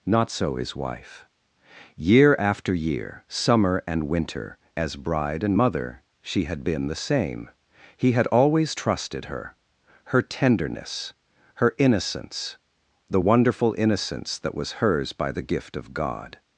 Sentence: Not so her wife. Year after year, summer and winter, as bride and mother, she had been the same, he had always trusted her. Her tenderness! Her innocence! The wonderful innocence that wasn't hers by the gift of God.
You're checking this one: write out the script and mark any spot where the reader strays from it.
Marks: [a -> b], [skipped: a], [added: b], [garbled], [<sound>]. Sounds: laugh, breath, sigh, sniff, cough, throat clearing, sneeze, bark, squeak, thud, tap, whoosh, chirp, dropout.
Not so [her -> his] wife. Year after year, summer and winter, as bride and mother, she had been the same, he had always trusted her. Her tenderness! Her innocence! The wonderful innocence that [wasn't -> was] hers by the gift of God.